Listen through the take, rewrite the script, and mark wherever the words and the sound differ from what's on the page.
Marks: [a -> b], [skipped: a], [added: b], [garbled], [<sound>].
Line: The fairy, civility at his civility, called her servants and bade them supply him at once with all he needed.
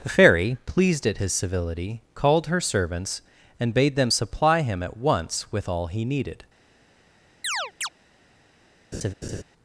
The fairy, [civility -> pleased] at his civility, called her servants and bade them supply him at once with all he needed. [chirp] [laugh]